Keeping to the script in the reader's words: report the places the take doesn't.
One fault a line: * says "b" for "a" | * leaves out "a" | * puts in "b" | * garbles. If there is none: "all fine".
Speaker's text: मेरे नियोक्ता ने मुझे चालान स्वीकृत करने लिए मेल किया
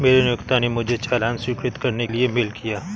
all fine